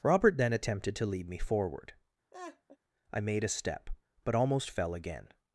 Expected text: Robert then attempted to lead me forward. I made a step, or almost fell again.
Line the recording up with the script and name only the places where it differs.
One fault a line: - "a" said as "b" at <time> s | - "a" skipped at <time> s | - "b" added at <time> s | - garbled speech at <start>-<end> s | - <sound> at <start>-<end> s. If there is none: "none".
- laugh at 2.3-2.8 s
- "or" said as "but" at 4.2 s